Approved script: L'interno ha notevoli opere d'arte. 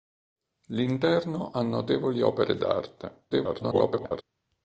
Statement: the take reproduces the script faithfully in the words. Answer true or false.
false